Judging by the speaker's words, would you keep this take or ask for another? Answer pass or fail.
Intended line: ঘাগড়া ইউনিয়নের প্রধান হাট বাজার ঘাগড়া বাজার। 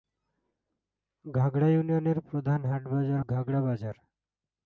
pass